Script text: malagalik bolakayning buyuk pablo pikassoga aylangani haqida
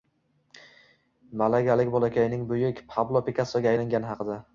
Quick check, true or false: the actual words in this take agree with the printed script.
true